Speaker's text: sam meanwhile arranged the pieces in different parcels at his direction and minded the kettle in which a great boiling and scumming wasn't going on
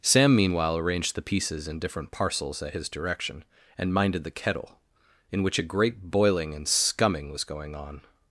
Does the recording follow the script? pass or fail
fail